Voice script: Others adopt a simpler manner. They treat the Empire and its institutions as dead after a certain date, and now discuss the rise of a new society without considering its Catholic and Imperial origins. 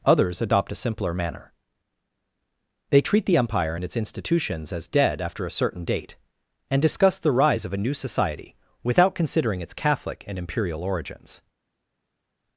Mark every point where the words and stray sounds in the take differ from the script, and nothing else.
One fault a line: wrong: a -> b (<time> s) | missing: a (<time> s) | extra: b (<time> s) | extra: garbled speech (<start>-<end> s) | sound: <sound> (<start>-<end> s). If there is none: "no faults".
missing: now (6.8 s)